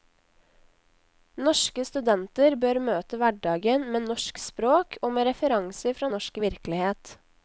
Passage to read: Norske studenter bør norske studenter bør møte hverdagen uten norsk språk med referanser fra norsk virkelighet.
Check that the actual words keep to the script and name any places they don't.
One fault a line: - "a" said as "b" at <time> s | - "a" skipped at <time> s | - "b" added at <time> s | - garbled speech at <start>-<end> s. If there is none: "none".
- "norske studenter bør" skipped at 2.8 s
- "uten" said as "med" at 4.0 s
- "og" added at 5.0 s